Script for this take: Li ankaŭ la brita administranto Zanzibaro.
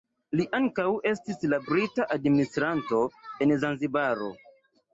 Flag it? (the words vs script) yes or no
yes